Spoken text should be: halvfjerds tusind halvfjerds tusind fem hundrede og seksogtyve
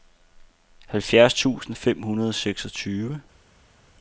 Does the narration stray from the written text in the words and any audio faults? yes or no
yes